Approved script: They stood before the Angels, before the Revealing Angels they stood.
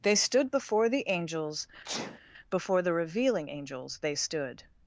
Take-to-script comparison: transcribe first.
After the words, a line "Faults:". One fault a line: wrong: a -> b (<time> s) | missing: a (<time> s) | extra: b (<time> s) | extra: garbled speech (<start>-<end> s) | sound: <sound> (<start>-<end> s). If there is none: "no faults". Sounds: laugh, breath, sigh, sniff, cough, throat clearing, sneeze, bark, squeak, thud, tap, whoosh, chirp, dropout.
They stood before the Angels, before the Revealing Angels they stood.
Faults:
sound: sneeze (1.8-2.2 s)